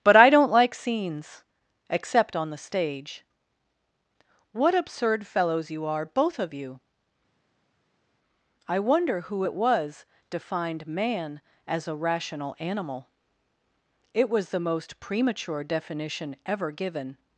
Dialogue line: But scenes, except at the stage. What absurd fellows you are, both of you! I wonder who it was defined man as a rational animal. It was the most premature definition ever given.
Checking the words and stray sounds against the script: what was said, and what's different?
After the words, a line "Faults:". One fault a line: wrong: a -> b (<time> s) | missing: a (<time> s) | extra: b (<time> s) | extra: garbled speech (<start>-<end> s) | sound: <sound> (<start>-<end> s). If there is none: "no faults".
But I don't like scenes, except on the stage. What absurd fellows you are, both of you! I wonder who it was defined man as a rational animal. It was the most premature definition ever given.
Faults:
extra: I don't like (0.1 s)
wrong: at -> on (2.4 s)